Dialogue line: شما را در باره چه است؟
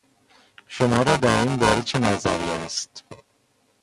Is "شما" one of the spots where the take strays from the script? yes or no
no